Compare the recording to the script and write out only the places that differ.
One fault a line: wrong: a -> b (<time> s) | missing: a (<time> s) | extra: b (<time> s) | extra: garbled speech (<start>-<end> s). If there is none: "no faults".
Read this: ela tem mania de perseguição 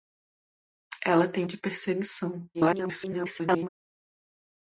missing: mania (1.4 s)
extra: garbled speech (2.5-3.7 s)